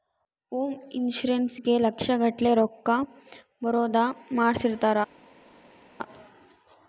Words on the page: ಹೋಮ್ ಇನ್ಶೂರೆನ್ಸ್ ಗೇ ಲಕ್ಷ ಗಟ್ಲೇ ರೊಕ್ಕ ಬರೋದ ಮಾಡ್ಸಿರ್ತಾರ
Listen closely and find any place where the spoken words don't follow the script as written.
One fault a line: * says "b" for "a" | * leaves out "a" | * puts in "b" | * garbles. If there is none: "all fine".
all fine